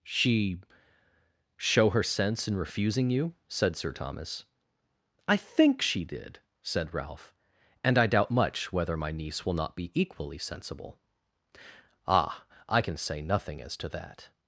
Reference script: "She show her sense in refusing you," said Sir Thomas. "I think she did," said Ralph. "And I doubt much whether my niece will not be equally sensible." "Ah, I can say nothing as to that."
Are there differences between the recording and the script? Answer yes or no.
no